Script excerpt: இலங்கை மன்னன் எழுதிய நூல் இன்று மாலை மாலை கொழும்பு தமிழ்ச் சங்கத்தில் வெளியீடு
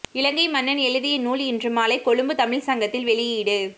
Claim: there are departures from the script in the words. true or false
true